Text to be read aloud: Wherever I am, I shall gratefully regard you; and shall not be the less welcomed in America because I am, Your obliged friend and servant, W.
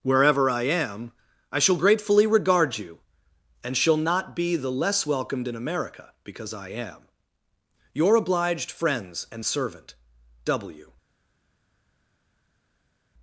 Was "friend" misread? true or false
true